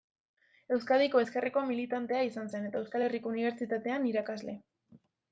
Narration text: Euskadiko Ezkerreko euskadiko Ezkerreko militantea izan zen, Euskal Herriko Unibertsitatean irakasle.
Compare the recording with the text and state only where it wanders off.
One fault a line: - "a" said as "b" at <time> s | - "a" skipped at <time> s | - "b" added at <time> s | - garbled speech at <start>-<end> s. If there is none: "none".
- "euskadiko Ezkerreko" skipped at 1.6 s
- "eta" added at 2.7 s